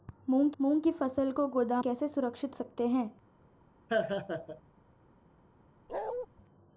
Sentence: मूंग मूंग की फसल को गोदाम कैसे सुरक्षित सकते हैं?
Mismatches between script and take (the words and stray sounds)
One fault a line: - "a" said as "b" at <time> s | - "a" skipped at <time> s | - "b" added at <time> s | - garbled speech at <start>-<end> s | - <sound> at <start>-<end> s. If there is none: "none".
- laugh at 3.9-4.6 s
- bark at 5.9-6.3 s